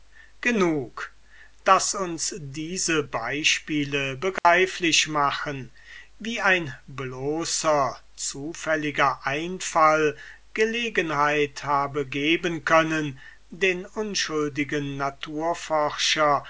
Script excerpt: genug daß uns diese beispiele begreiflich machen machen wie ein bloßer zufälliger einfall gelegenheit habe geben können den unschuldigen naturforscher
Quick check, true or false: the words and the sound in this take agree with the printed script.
false